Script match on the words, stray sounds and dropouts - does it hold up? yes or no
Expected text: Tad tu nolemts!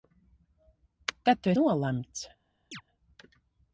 no